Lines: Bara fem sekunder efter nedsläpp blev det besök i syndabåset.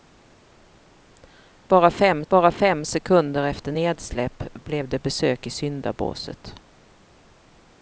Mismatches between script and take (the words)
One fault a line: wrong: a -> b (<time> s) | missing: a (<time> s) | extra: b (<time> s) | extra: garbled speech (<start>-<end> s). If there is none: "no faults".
extra: bara fem (2.3 s)